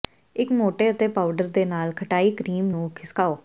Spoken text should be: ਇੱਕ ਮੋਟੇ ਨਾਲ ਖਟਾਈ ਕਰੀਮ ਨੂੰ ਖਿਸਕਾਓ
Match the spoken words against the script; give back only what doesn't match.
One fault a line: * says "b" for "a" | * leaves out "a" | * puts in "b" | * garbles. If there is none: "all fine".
* puts in "ਅਤੇ ਪਾਊਡਰ ਦੇ"